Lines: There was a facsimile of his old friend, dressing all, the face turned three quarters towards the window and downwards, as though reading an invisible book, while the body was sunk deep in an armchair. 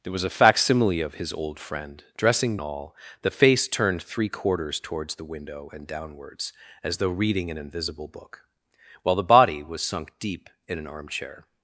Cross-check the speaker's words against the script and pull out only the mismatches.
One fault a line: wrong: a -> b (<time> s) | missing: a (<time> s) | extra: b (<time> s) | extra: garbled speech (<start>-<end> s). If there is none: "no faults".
no faults